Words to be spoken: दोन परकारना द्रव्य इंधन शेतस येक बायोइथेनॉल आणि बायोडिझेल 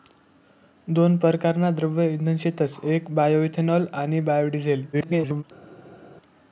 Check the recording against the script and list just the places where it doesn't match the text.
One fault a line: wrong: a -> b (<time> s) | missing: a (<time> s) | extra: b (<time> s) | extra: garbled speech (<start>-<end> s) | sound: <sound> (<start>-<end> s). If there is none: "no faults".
extra: garbled speech (4.9-5.4 s)